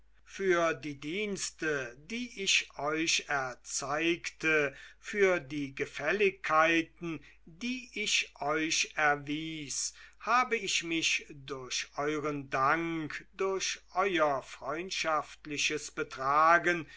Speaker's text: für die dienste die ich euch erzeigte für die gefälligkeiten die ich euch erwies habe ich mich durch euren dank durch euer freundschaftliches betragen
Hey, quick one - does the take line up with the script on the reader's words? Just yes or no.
yes